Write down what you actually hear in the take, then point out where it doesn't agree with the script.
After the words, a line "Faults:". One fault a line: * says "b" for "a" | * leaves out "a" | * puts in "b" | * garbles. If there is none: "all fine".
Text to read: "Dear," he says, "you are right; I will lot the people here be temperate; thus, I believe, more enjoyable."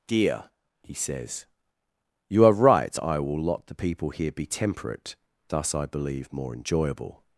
"Dear," he says, "you are right; I will lot the people here be temperate; thus, I believe, more enjoyable."
Faults:
all fine